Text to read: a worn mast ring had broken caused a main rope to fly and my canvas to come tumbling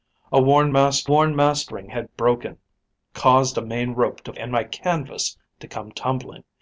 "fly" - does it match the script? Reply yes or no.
no